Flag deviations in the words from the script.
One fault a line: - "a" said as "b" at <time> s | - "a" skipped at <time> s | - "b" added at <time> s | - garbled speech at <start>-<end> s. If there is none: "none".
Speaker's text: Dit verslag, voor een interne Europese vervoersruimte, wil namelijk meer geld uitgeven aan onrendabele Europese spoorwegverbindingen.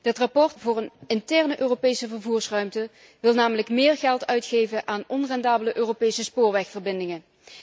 none